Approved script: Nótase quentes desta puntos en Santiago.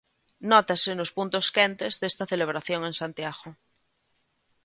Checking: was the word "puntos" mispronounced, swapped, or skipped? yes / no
yes